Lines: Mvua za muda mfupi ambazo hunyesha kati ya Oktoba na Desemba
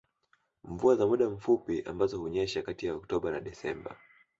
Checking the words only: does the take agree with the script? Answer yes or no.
yes